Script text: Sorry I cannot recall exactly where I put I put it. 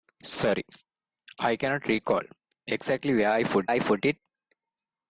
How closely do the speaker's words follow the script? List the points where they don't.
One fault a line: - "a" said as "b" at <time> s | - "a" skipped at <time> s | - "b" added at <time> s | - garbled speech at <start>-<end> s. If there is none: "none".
none